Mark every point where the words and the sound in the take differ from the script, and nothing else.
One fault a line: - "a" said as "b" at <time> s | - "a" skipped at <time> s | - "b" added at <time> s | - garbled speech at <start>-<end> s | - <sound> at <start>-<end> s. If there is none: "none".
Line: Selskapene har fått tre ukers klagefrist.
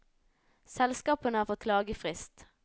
- "tre ukers" skipped at 1.6 s